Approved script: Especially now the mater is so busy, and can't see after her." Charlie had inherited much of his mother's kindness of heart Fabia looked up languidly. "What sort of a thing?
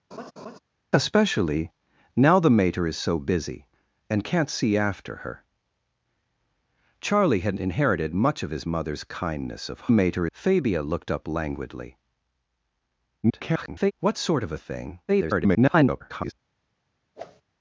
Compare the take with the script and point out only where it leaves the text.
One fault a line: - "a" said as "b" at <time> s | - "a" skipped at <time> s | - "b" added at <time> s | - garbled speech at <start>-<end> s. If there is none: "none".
- "heart" said as "mater" at 9.9 s
- garbled speech at 13.2-13.9 s
- garbled speech at 15.1-16.3 s